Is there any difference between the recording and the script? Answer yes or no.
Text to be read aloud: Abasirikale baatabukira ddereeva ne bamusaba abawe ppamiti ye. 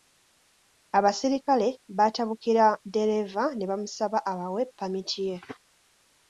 no